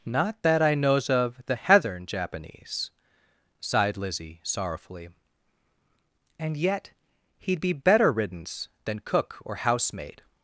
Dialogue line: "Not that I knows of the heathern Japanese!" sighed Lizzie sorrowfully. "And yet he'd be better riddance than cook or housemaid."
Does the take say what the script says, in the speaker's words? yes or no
yes